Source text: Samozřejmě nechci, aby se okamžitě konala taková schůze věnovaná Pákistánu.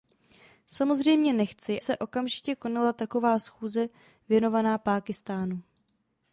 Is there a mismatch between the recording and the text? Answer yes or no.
yes